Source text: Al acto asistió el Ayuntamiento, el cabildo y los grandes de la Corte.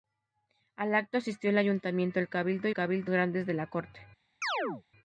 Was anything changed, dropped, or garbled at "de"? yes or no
no